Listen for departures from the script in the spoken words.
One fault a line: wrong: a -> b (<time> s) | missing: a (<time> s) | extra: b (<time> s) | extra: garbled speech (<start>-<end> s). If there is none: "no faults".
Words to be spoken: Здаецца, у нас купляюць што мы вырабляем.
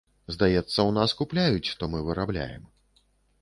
no faults